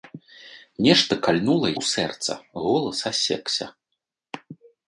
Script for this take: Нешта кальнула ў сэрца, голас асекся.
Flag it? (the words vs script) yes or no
no